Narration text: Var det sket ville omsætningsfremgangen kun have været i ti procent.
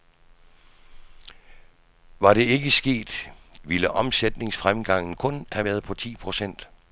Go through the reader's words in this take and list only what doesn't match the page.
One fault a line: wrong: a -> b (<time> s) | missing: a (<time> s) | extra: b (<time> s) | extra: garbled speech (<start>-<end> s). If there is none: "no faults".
extra: ikke (2.4 s)
wrong: i -> på (5.8 s)